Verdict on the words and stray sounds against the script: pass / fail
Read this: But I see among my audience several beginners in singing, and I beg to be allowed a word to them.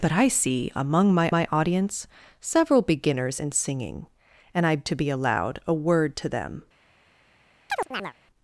fail